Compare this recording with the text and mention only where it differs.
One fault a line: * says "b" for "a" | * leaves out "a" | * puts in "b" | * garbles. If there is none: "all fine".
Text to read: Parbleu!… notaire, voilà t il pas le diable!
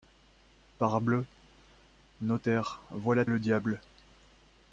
* leaves out "t il pas"